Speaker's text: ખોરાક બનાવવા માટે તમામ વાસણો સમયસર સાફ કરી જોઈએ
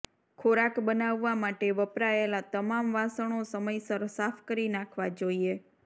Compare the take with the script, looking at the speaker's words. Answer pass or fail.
fail